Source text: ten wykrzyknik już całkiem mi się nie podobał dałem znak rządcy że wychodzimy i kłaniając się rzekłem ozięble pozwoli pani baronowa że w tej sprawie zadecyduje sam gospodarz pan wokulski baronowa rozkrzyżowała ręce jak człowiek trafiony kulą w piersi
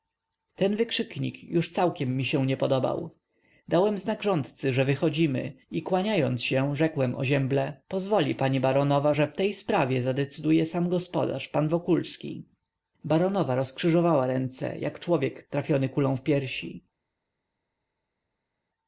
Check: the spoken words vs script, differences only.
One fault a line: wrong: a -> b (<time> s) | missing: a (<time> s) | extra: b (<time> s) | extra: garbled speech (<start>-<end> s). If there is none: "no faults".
no faults